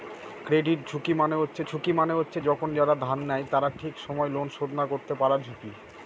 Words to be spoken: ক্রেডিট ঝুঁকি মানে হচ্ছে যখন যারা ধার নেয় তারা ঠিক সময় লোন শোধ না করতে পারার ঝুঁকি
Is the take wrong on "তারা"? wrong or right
right